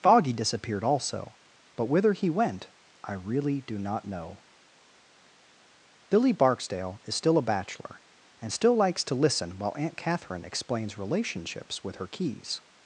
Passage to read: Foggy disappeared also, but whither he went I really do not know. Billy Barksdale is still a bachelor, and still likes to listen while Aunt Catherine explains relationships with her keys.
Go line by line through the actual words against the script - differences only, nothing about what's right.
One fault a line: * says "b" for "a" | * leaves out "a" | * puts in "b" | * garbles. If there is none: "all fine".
all fine